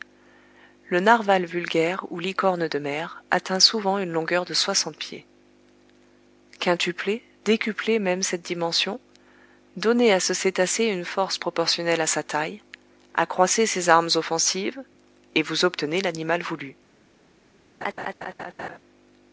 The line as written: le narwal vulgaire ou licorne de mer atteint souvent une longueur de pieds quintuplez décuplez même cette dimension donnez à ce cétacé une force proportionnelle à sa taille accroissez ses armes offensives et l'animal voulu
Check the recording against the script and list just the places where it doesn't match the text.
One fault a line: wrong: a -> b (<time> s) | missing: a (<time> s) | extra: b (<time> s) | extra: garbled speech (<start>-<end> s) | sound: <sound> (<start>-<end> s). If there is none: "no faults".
extra: soixante (4.5 s)
extra: vous obtenez (15.4 s)
sound: laugh (17.8-18.8 s)